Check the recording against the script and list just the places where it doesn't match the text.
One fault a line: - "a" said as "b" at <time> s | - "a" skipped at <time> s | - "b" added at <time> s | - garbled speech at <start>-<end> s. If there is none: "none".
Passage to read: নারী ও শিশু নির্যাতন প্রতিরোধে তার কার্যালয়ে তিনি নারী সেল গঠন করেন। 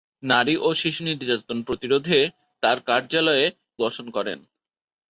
- "তিনি নারী সেল" skipped at 3.5 s